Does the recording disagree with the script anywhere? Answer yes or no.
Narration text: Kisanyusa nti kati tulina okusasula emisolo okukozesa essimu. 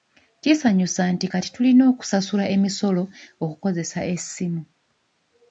no